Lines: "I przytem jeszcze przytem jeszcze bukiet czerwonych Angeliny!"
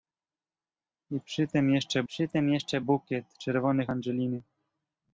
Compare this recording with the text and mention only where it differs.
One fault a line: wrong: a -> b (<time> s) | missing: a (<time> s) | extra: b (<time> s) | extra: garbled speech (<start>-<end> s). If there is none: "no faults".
no faults